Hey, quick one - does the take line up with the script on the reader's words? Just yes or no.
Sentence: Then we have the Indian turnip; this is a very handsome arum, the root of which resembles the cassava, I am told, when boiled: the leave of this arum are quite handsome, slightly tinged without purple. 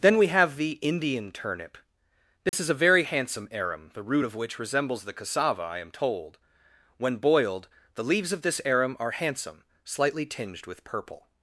no